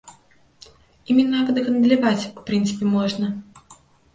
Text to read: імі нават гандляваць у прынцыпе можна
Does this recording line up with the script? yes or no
yes